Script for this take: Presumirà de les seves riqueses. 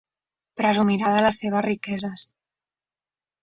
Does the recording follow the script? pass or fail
pass